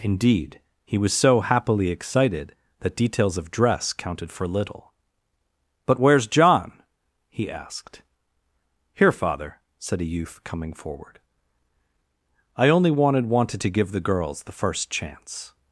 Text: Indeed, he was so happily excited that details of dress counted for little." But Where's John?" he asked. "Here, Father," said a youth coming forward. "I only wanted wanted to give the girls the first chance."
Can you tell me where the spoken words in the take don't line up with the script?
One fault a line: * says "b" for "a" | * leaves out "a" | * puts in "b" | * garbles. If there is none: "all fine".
all fine